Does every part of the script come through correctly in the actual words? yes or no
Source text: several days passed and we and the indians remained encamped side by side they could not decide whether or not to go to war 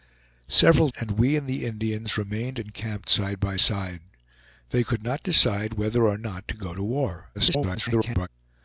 no